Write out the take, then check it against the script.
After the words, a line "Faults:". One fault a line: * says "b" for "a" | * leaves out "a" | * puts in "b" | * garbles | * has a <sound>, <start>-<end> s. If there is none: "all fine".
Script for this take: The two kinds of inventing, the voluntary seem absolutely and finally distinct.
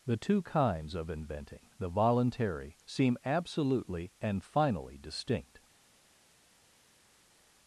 The two kinds of inventing, the voluntary seem absolutely and finally distinct.
Faults:
all fine